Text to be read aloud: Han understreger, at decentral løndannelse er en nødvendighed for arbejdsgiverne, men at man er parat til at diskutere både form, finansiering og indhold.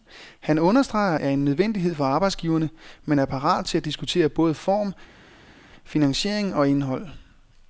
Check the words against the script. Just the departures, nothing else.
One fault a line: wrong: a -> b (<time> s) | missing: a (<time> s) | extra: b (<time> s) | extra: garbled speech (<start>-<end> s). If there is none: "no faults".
missing: at decentral løndannelse (1.2 s)
missing: at man (3.2 s)